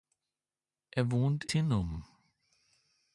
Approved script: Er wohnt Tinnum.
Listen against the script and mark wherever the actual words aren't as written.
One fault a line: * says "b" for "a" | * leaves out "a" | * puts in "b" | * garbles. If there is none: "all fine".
all fine